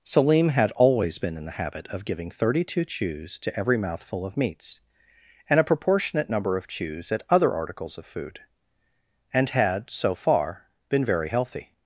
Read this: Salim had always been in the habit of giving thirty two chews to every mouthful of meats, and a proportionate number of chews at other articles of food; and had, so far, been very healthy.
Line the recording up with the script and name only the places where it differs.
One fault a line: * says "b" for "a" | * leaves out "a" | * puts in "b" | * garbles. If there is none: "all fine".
all fine